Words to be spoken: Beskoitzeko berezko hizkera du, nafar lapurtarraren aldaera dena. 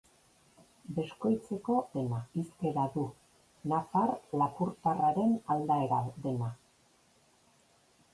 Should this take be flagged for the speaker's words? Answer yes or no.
yes